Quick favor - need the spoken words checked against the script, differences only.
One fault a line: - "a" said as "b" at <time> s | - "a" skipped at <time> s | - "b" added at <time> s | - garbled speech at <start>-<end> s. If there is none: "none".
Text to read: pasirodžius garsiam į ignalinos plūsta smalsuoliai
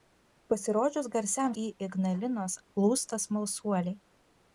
none